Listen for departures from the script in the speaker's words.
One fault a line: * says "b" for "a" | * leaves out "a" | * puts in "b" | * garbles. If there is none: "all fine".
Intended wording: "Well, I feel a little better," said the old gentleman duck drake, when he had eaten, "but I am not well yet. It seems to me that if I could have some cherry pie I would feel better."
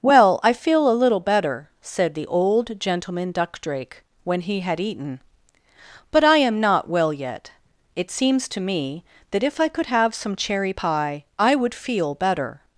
all fine